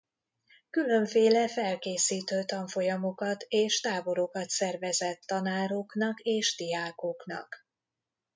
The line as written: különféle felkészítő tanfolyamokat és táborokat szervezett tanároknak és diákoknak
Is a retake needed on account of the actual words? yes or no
no